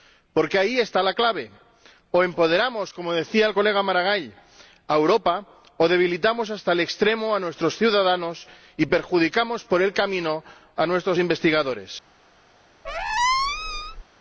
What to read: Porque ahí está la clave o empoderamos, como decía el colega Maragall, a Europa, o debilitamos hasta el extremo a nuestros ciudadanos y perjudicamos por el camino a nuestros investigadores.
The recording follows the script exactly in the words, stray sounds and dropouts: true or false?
false